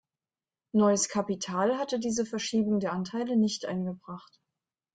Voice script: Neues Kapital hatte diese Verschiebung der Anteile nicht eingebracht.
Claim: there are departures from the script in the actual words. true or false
false